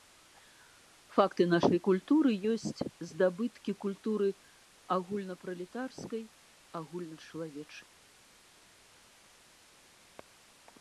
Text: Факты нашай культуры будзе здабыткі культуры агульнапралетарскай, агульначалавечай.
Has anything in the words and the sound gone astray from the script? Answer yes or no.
yes